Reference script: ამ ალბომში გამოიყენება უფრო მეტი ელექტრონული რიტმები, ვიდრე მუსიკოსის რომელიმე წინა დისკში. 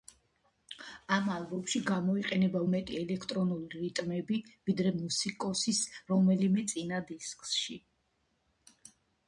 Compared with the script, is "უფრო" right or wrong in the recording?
wrong